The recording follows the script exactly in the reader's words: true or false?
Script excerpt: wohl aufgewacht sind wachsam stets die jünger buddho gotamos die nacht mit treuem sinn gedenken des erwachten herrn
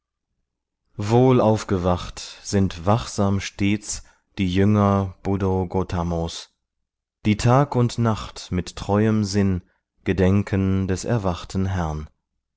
false